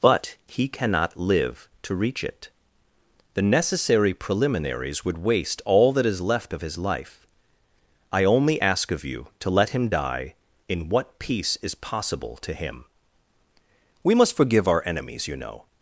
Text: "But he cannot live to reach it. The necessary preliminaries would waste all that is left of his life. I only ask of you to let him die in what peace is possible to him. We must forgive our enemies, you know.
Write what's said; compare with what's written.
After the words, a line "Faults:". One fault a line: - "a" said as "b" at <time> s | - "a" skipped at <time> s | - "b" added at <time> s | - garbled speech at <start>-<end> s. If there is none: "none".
"But he cannot live to reach it. The necessary preliminaries would waste all that is left of his life. I only ask of you to let him die in what peace is possible to him. We must forgive our enemies, you know.
Faults:
none